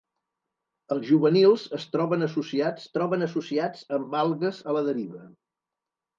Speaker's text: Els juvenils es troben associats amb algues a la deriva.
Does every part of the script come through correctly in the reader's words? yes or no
no